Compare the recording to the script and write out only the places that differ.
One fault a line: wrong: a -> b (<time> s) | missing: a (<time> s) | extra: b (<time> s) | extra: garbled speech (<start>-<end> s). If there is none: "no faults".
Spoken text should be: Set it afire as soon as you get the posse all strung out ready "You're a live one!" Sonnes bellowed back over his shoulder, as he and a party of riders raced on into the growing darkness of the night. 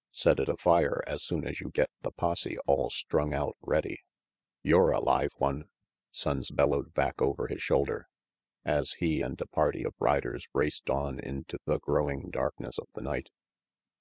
no faults